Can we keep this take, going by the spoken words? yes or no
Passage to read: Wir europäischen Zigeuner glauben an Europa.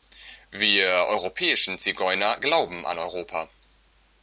yes